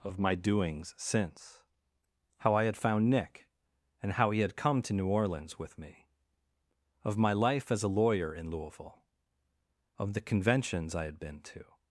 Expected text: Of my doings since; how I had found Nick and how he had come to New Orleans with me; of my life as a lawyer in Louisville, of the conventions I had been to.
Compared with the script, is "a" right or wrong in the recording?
right